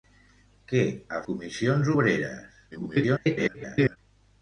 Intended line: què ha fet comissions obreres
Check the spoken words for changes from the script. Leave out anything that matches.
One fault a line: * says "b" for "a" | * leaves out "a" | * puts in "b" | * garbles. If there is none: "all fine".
* leaves out "fet"
* garbles